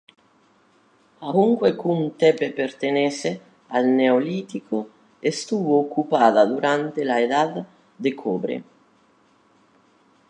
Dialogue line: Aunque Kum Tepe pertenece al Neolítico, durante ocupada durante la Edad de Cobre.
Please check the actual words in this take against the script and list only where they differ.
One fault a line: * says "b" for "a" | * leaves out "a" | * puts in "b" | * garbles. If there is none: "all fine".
* says "estuvo" for "durante"